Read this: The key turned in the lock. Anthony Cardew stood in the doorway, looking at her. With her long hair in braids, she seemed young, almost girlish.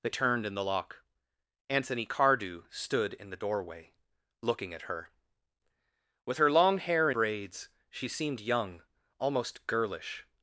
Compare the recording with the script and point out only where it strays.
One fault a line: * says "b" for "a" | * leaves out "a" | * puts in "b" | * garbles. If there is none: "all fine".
* leaves out "key"
* leaves out "in"